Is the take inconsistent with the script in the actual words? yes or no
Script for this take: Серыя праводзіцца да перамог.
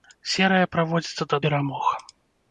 no